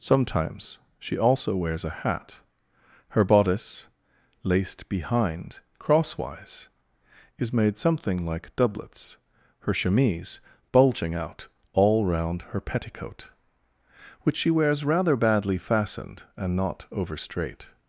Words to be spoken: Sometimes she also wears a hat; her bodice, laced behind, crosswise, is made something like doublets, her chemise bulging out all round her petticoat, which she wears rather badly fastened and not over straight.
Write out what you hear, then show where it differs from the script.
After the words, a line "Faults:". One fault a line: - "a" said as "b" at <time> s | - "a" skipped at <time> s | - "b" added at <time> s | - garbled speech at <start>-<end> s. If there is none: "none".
Sometimes she also wears a hat; her bodice, laced behind, crosswise, is made something like doublets, her chemise bulging out all round her petticoat, which she wears rather badly fastened and not over straight.
Faults:
none